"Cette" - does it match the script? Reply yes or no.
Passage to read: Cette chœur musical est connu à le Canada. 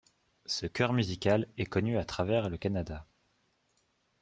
no